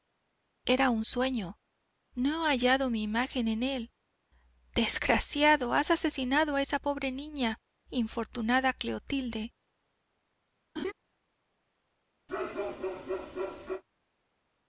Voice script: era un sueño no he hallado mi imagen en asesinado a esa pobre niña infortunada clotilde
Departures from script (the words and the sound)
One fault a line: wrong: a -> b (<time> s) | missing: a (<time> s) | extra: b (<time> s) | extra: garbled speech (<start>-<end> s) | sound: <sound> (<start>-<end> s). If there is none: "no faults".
extra: él desgraciado has (3.6 s)
sound: laugh (10.8-10.9 s)
sound: bark (12.3-13.8 s)